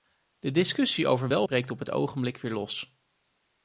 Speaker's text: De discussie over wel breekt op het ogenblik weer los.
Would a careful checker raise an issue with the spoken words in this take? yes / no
no